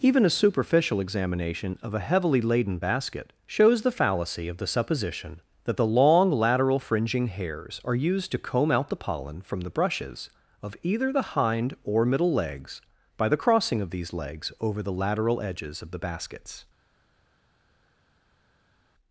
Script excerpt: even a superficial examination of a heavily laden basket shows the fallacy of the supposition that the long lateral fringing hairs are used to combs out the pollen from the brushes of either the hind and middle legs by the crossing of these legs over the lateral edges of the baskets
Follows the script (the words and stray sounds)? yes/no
no